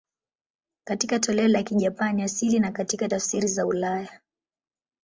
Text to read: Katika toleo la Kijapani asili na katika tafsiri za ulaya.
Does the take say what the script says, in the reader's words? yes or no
yes